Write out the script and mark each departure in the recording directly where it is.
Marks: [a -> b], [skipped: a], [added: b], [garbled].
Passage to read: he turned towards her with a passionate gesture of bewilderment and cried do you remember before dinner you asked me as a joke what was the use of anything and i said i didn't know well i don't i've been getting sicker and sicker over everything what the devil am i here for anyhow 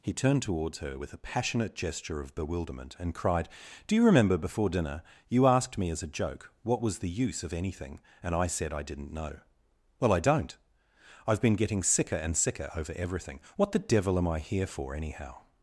he turned towards her with a passionate gesture of bewilderment and cried do you remember before dinner you asked me as a joke what was the use of anything and i said i didn't know well i don't i've been getting sicker and sicker over everything what the devil am i here for anyhow